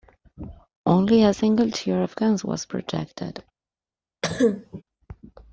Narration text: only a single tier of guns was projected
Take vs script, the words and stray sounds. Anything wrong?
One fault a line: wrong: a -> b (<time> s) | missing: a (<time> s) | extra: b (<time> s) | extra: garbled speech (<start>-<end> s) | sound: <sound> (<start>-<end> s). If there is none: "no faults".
sound: cough (4.2-4.8 s)